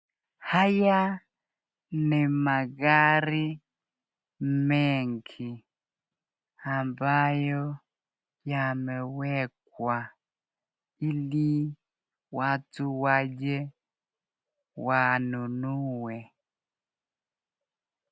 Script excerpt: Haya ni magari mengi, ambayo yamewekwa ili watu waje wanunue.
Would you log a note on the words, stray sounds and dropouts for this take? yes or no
no